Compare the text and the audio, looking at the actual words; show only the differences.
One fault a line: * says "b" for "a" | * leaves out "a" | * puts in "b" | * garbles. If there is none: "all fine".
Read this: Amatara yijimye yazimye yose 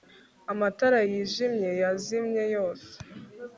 all fine